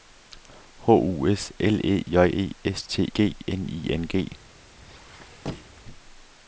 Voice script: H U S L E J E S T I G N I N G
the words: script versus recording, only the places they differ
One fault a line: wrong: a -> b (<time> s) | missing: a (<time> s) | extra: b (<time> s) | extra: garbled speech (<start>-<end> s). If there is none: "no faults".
missing: I (3.1 s)